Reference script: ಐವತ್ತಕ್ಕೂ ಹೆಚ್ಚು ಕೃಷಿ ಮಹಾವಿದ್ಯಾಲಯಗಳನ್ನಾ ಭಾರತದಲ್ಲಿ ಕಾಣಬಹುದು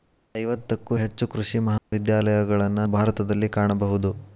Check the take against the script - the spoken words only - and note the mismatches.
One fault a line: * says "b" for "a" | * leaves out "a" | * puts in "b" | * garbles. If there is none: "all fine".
all fine